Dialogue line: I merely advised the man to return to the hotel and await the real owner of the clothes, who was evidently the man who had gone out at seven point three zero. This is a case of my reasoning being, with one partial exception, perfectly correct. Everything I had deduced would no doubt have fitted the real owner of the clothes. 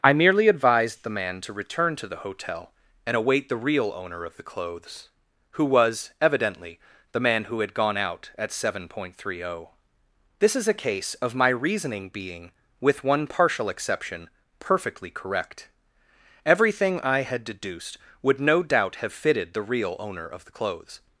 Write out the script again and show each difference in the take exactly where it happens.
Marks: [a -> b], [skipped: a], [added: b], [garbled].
I merely advised the man to return to the hotel and await the real owner of the clothes, who was evidently the man who had gone out at seven point three zero. This is a case of my reasoning being, with one partial exception, perfectly correct. Everything I had deduced would no doubt have fitted the real owner of the clothes.